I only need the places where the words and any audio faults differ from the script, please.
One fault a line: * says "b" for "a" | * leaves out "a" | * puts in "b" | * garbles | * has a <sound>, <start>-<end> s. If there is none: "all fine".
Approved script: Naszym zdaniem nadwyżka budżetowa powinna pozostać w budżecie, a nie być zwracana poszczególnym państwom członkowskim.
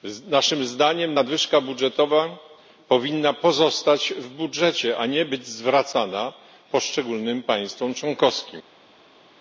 all fine